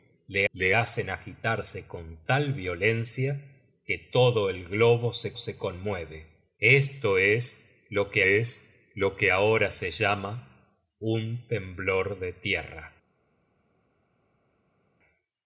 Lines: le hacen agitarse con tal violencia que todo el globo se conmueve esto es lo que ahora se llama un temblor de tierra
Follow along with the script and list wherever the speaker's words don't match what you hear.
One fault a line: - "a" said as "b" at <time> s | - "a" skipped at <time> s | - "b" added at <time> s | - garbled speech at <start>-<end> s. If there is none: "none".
- "le" added at 0.5 s
- "se" added at 5.4 s
- "es lo que" added at 8.2 s